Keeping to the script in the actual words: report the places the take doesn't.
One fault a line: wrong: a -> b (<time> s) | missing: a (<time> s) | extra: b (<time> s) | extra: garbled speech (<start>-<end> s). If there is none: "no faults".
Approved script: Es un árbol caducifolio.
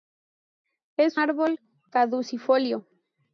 missing: un (1.2 s)